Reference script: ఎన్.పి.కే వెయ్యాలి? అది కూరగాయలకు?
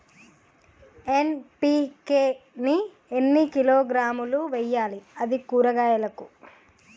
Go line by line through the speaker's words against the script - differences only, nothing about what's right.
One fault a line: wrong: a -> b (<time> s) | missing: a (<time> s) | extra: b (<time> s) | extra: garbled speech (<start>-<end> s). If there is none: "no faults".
extra: ని ఎన్ని కిలోగ్రాములు (2.6 s)